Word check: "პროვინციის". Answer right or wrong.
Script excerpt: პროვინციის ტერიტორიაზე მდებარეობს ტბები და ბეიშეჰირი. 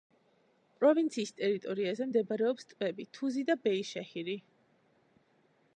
right